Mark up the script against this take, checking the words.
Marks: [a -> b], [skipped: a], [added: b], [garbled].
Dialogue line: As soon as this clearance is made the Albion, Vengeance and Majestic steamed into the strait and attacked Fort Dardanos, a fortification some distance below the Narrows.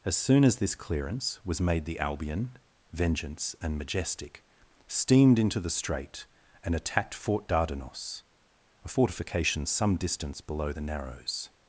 As soon as this clearance [is -> was] made the Albion, Vengeance and Majestic steamed into the strait and attacked Fort Dardanos, a fortification some distance below the Narrows.